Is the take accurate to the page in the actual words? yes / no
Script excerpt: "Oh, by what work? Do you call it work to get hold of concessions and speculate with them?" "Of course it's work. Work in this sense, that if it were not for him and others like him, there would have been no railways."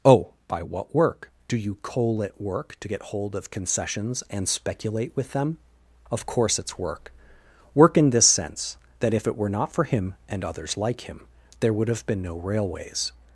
no